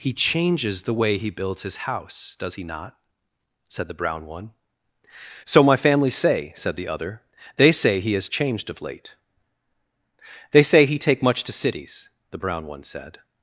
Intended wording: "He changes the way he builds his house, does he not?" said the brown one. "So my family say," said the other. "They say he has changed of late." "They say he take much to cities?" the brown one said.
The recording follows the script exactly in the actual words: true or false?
true